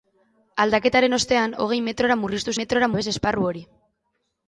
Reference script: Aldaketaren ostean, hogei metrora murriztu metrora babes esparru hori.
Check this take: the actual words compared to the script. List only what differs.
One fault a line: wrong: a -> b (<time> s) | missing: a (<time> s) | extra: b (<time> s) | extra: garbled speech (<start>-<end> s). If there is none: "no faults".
no faults